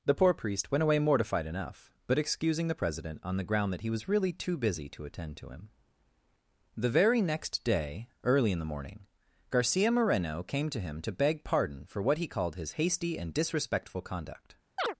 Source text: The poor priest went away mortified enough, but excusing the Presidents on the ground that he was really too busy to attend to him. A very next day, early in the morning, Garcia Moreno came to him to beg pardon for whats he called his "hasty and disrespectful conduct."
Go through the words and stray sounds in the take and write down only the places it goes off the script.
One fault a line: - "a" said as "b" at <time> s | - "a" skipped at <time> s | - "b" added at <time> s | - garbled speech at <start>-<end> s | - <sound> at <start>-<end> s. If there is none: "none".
- "Presidents" said as "President" at 2.7 s
- "A" said as "The" at 6.8 s
- "whats" said as "what" at 12.0 s
- chirp at 14.8-14.9 s